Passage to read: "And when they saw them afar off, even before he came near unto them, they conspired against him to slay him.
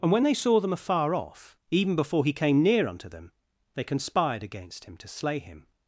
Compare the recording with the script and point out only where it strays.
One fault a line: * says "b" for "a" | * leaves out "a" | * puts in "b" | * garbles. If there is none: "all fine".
all fine